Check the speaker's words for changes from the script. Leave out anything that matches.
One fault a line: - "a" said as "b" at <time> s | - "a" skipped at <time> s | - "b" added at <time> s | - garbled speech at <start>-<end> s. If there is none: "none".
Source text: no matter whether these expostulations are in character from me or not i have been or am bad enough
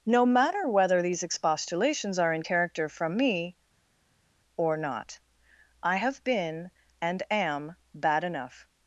- "or" said as "and" at 7.0 s